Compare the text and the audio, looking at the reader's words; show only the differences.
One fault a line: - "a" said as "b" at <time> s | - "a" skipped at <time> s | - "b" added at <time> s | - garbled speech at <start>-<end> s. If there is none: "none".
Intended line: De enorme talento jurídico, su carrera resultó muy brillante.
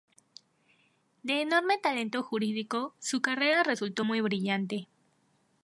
none